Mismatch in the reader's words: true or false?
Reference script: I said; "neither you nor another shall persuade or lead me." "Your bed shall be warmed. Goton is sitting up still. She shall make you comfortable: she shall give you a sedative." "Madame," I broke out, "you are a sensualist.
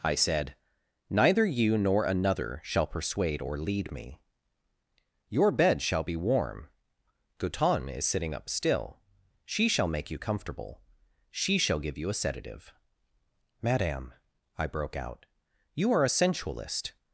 true